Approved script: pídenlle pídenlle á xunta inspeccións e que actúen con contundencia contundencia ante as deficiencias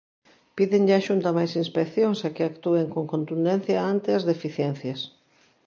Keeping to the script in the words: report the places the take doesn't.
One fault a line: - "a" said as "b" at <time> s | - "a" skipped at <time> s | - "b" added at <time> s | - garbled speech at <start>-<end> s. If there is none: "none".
- "pídenlle" skipped at 0.9 s
- "máis" added at 1.4 s
- "contundencia" skipped at 3.8 s